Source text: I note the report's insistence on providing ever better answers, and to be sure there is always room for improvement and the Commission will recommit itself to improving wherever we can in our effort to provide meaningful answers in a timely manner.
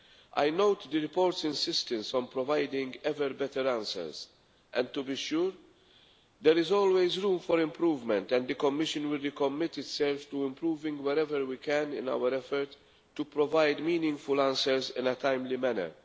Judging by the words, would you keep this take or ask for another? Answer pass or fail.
pass